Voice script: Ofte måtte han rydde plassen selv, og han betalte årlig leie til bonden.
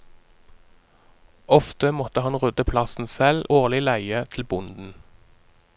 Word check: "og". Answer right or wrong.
wrong